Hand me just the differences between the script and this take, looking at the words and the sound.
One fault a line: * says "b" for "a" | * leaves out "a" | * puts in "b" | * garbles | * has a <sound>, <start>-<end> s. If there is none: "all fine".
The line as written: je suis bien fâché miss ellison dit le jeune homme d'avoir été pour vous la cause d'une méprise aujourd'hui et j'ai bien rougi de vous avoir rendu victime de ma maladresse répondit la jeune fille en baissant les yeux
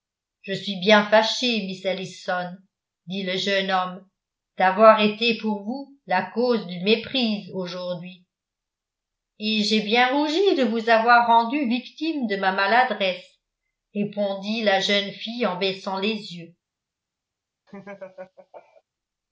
* has a laugh, 17.7-18.8 s